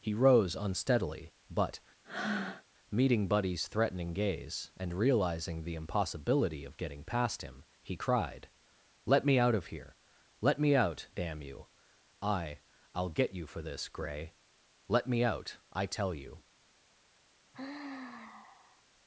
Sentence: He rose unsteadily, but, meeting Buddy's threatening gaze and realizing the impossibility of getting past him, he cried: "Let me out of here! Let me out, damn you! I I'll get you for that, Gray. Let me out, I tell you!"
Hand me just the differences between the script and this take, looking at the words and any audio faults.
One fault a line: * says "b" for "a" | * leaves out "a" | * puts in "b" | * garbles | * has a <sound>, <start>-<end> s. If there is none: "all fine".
* has a breath, 2.0-2.6 s
* says "this" for "that"
* has a sigh, 17.5-18.8 s